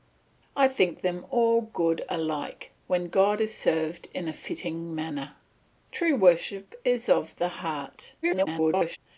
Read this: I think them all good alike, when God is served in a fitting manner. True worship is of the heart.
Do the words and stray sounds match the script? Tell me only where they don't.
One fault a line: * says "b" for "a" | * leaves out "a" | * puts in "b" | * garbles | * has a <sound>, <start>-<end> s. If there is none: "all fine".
* garbles